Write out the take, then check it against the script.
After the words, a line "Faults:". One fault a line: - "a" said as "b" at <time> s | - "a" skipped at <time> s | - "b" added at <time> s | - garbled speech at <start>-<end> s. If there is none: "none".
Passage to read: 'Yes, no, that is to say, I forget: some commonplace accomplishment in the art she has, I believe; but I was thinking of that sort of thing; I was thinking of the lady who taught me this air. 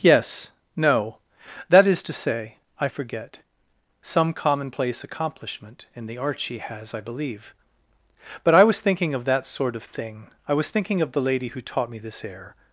'Yes, no, that is to say, I forget: some commonplace accomplishment in the art she has, I believe; but I was thinking of that sort of thing; I was thinking of the lady who taught me this air.
Faults:
none